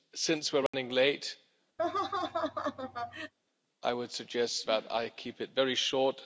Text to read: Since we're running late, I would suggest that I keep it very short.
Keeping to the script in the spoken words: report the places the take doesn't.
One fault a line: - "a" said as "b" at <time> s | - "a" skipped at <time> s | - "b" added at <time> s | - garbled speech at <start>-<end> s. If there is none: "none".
none